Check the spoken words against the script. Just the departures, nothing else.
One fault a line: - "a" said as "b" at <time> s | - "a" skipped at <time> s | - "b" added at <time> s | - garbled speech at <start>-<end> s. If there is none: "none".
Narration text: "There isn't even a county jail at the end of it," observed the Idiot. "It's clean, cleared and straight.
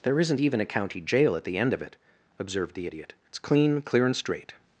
- "cleared" said as "clear" at 3.8 s